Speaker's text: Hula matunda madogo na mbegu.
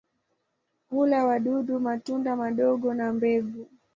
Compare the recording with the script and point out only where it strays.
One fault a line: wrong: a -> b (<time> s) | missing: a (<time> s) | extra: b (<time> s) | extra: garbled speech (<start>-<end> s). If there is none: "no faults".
extra: wadudu (1.2 s)